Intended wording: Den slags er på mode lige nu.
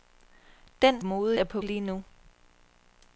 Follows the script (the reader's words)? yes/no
no